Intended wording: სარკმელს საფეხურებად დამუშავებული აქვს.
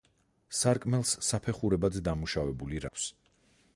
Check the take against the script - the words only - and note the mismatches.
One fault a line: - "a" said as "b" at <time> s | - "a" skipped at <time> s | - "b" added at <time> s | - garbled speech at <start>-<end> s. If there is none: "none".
none